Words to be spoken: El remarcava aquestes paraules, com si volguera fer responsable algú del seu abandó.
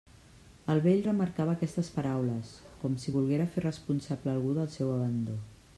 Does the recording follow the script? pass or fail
fail